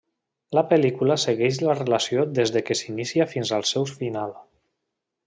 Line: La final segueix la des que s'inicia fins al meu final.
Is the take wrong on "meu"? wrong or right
wrong